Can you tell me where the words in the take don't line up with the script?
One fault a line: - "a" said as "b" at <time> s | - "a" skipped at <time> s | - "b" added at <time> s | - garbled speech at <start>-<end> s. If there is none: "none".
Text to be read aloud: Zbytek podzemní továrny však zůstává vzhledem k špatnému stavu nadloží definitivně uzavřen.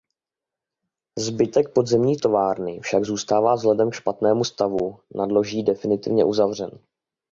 none